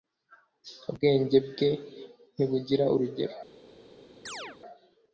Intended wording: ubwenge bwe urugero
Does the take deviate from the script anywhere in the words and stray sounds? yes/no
yes